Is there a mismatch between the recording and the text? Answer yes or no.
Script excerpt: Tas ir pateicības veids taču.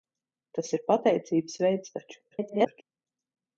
yes